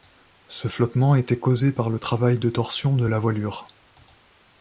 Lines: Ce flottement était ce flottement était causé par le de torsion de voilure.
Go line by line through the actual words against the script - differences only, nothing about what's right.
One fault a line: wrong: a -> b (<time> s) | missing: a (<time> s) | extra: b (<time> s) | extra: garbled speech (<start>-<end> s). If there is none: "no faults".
missing: ce flottement était (1.4 s)
extra: travail (2.0 s)
extra: la (3.0 s)